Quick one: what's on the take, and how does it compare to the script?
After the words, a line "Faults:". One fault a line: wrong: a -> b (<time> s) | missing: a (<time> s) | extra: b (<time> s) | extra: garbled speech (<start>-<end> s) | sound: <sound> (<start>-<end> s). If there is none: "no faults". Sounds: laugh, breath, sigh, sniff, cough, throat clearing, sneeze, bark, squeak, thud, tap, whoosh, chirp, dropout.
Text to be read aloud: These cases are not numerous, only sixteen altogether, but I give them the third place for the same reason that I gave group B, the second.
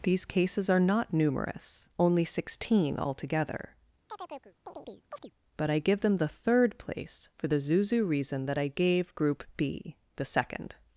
These cases are not numerous, only sixteen altogether, but I give them the third place for the zuzu reason that I gave group B, the second.
Faults:
sound: chirp (4.1-5.3 s)
wrong: same -> zuzu (7.6 s)